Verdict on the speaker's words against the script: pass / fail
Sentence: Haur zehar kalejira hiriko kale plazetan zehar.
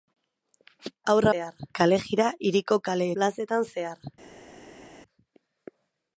pass